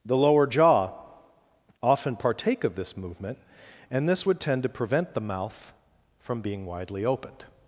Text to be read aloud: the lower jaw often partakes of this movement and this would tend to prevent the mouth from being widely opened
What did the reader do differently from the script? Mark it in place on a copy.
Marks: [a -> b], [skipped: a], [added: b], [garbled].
the lower jaw often [partakes -> partake] of this movement and this would tend to prevent the mouth from being widely opened